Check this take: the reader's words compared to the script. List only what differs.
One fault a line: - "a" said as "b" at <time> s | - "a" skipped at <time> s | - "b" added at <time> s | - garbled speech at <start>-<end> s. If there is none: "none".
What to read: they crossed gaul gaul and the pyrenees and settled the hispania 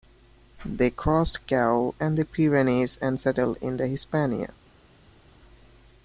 - "gaul" skipped at 1.9 s
- "in" added at 3.6 s